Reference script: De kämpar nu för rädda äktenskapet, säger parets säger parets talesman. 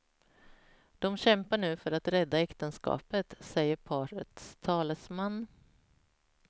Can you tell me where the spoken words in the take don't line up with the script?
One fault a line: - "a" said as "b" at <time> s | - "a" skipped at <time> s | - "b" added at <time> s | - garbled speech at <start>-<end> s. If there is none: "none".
- "att" added at 1.9 s
- "säger parets" skipped at 4.6 s